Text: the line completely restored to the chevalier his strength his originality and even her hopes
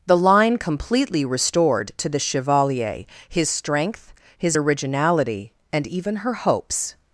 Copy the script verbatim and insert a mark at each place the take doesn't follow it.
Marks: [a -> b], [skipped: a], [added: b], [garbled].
the line completely restored to the chevalier his strength his originality and even her hopes